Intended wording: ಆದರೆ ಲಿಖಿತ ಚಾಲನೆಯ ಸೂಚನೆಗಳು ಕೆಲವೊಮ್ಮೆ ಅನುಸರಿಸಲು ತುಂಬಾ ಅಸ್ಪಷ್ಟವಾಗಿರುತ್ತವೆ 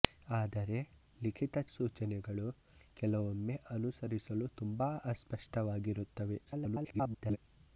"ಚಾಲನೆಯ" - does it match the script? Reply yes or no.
no